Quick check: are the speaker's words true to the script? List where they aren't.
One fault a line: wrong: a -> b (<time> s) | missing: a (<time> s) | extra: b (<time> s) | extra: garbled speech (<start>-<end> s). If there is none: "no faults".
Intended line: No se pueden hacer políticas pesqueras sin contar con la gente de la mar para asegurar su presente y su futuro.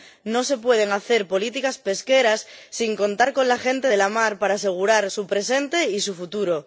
no faults